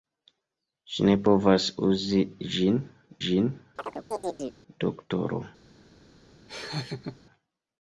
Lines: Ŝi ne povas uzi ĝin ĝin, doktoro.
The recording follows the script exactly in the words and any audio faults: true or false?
false